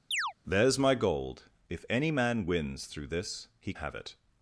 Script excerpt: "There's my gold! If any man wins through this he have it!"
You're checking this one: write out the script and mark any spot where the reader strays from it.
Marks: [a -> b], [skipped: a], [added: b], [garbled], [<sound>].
[chirp] "There's my gold! If any man wins through this he have it!"